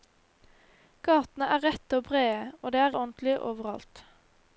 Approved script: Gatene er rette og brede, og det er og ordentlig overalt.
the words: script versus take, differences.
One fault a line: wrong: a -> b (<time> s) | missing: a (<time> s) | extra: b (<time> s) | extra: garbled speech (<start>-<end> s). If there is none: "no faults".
no faults